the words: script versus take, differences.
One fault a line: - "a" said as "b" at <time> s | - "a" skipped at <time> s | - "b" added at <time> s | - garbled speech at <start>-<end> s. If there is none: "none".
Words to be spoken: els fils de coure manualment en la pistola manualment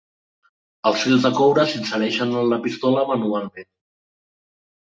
- "manualment" said as "s'insereixen" at 1.7 s